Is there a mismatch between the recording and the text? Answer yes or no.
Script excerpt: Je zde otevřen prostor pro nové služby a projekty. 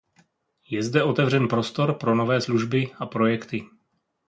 no